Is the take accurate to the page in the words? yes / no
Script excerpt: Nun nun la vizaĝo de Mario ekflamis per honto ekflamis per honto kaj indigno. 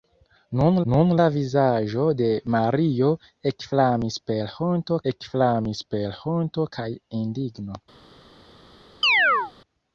yes